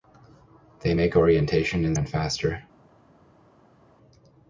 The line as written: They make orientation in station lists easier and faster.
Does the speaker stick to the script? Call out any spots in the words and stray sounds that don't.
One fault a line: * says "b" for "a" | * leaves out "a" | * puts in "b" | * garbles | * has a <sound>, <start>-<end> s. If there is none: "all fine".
* leaves out "station lists easier"